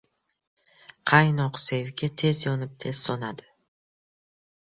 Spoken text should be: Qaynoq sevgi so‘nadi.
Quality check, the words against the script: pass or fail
fail